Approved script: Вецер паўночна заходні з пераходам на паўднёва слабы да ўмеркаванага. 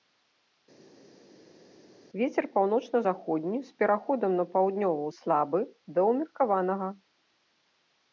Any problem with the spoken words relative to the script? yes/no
no